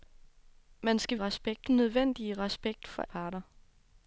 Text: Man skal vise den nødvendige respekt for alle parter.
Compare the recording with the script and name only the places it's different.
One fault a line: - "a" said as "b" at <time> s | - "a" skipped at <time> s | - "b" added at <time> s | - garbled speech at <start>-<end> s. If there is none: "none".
- "vise" said as "respekt" at 1.2 s
- "alle" skipped at 3.0 s